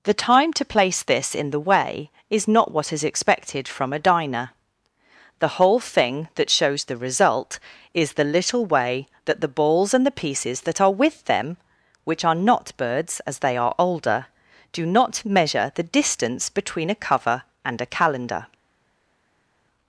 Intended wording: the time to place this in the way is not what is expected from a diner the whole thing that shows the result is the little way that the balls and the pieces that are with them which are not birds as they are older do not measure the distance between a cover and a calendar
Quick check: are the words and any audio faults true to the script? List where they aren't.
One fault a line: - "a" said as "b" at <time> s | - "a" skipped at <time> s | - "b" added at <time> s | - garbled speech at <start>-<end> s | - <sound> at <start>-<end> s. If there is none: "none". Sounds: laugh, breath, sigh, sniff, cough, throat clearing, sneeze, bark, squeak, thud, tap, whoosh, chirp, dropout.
none